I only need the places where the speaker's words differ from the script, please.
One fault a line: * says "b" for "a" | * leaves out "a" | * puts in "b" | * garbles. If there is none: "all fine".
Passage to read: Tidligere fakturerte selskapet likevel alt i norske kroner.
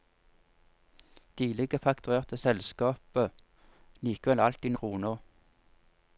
* leaves out "norske"